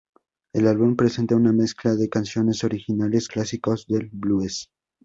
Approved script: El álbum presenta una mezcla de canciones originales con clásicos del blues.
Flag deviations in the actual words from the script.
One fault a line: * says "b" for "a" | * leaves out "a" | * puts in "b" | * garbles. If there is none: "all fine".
* leaves out "con"